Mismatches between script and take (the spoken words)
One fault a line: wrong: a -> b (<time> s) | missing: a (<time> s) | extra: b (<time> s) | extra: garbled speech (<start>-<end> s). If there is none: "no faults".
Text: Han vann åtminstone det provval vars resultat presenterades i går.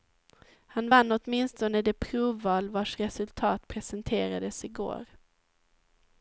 no faults